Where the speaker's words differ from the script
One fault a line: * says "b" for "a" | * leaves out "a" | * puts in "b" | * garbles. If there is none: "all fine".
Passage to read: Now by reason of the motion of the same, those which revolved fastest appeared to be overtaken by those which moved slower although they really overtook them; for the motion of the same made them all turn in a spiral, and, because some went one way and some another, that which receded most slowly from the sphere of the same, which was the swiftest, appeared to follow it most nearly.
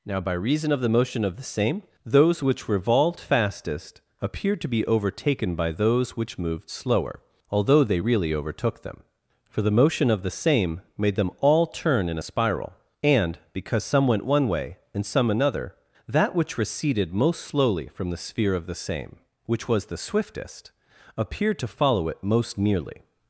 all fine